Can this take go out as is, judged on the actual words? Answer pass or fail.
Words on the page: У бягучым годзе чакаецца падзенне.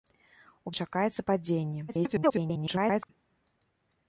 fail